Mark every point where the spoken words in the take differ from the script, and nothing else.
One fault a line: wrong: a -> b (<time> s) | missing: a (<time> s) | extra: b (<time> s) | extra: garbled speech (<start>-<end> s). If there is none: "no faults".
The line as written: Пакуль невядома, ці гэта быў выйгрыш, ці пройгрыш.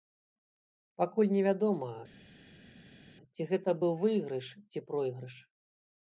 no faults